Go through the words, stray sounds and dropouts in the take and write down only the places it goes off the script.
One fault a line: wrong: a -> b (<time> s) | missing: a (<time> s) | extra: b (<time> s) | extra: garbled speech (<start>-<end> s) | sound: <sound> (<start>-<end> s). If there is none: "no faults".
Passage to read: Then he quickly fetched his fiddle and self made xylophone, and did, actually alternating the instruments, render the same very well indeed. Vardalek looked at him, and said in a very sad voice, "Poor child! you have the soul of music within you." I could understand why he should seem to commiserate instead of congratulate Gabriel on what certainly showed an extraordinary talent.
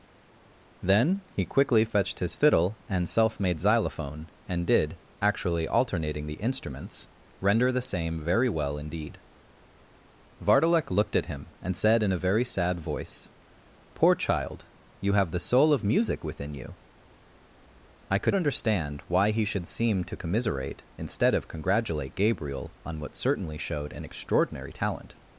no faults